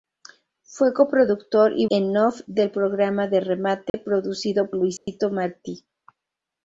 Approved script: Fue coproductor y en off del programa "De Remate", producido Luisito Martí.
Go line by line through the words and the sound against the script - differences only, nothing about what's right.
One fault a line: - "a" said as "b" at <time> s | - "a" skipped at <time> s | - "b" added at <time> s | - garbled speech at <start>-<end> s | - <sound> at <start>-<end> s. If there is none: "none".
- dropout at 3.9-3.9 s
- dropout at 5.0-5.1 s